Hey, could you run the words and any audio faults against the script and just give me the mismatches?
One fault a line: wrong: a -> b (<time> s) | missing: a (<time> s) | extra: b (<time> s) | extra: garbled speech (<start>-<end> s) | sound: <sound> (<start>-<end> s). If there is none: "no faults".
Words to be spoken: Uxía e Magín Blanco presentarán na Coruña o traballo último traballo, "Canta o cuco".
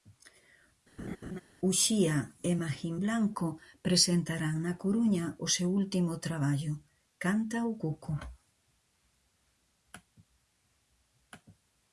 sound: laugh (1.0-1.4 s)
wrong: traballo -> seu (5.6 s)